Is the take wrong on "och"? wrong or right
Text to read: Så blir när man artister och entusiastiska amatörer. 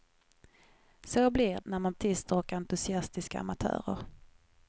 right